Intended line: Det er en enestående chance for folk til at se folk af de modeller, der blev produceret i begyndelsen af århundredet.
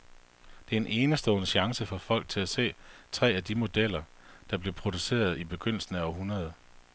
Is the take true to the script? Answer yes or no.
no